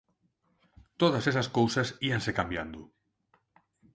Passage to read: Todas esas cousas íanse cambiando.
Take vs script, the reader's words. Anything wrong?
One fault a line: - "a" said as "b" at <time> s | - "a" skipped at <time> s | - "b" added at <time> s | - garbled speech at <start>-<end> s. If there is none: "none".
none